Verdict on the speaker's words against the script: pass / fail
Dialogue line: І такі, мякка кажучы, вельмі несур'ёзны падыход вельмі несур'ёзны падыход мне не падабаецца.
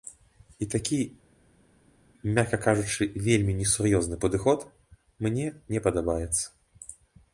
fail